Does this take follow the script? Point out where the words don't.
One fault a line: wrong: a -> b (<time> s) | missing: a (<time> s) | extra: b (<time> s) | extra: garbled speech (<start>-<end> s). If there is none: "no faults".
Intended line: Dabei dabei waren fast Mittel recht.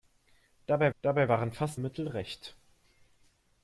no faults